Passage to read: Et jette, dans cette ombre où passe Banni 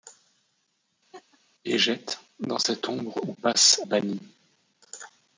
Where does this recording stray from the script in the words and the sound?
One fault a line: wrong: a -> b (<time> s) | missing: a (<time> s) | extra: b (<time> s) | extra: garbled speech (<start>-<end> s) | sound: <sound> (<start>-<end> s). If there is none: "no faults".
sound: laugh (1.1-1.4 s)